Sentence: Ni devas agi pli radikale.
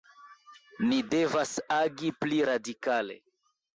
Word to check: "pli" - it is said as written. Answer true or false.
true